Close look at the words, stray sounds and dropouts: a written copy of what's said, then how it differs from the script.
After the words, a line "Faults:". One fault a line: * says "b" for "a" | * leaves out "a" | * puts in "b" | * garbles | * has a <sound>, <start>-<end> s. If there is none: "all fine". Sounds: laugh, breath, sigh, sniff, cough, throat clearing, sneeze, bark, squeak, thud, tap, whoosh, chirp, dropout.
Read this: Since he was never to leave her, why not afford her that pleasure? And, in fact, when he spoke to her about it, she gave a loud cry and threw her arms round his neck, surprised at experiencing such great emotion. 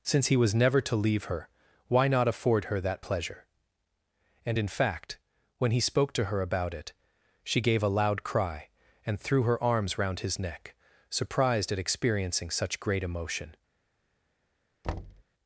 Since he was never to leave her, why not afford her that pleasure? And, in fact, when he spoke to her about it, she gave a loud cry and threw her arms round his neck, surprised at experiencing such great emotion.
Faults:
* has a thud, 14.8-15.2 s